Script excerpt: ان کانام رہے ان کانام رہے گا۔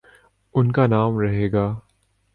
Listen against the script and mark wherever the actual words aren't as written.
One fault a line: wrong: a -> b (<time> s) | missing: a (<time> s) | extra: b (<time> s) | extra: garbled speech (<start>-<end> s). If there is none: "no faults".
missing: ان کانام رہے (1.5 s)